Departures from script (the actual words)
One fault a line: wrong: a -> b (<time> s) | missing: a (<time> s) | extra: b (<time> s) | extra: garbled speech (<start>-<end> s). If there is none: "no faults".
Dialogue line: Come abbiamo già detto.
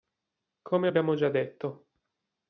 no faults